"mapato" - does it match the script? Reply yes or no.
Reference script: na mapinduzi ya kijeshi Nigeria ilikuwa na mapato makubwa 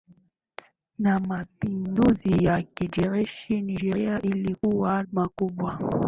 no